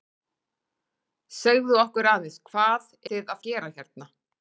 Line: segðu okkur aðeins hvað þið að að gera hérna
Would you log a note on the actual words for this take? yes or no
no